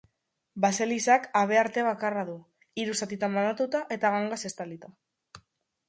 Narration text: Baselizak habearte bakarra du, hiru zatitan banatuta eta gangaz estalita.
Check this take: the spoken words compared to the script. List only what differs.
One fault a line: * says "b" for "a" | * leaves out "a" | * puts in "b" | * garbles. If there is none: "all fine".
all fine